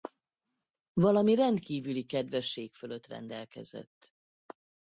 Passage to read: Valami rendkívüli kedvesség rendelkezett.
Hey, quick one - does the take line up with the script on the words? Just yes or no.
no